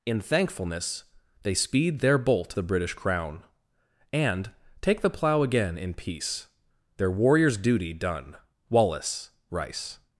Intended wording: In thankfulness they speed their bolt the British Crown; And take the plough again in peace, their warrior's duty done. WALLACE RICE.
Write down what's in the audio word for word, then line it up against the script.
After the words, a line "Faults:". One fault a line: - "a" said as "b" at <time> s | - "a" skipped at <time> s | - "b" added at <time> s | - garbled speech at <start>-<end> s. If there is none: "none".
In thankfulness they speed their bolt the British Crown; And take the plough again in peace, their warrior's duty done. WALLACE RICE.
Faults:
none